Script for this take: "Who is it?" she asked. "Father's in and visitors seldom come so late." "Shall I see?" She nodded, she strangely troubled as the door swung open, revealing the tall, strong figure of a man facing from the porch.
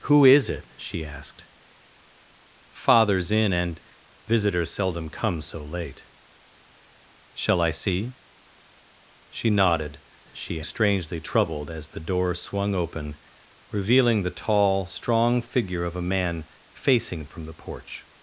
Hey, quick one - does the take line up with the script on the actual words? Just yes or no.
yes